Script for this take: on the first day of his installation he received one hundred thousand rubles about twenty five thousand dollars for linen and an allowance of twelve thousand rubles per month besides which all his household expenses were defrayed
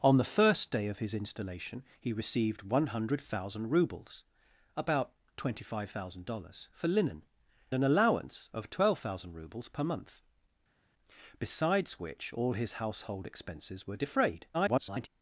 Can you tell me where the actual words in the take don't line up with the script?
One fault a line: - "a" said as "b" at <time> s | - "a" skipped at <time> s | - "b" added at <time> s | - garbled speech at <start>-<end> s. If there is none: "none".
- "and" skipped at 7.2 s
- garbled speech at 14.5-15.1 s